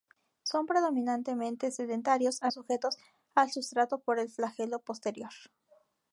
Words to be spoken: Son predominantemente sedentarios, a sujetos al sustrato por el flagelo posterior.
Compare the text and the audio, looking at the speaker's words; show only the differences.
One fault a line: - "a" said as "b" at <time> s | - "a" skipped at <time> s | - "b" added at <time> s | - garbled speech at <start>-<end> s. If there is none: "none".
none